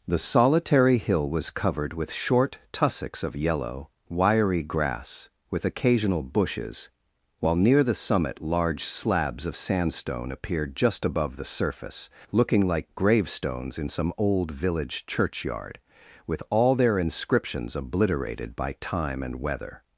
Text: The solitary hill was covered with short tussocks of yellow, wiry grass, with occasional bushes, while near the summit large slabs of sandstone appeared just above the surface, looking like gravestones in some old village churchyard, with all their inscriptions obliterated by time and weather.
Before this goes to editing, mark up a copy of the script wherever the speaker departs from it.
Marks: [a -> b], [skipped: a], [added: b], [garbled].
The solitary hill was covered with short tussocks of yellow, wiry grass, with occasional bushes, while near the summit large slabs of sandstone appeared just above the surface, looking like gravestones in some old village churchyard, with all their inscriptions obliterated by time and weather.